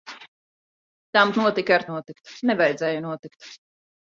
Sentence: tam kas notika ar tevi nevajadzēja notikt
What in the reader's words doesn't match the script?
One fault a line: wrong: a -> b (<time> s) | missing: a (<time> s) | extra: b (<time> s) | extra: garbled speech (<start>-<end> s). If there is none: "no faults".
missing: kas (1.3 s)
wrong: tevi -> notikt (1.9 s)